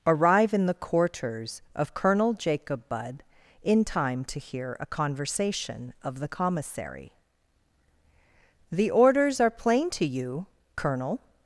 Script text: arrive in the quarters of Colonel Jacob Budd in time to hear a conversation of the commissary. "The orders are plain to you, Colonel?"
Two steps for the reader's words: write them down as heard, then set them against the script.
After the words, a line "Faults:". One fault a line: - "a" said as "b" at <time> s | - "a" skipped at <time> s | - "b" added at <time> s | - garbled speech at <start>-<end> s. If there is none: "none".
arrive in the quarters of Colonel Jacob Budd in time to hear a conversation of the commissary. "The orders are plain to you, Colonel?"
Faults:
none